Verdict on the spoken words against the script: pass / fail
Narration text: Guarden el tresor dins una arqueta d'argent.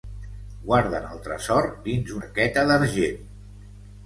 fail